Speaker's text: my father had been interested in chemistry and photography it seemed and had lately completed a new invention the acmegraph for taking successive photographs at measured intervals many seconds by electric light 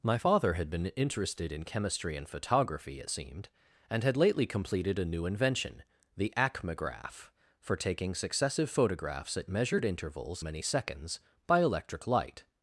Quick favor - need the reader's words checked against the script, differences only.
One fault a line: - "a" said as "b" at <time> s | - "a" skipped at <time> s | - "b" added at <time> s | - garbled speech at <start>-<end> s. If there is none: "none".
none